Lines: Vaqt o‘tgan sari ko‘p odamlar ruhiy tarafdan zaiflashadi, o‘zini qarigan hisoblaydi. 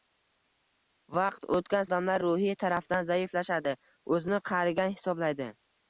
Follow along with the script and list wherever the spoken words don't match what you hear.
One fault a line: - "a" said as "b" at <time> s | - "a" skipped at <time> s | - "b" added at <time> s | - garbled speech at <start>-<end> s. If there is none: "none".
- "sari ko‘p" skipped at 1.9 s